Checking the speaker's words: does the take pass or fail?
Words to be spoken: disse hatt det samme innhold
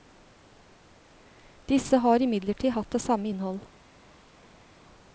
fail